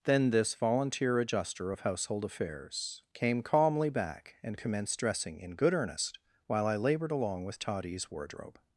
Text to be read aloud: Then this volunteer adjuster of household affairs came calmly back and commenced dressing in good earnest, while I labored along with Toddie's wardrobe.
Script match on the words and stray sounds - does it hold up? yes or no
yes